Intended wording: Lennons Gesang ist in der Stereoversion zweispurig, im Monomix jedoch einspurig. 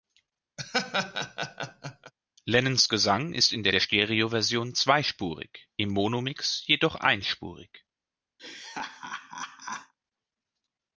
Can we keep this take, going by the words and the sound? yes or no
no